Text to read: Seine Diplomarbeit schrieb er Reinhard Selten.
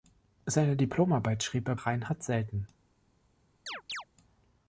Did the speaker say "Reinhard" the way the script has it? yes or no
yes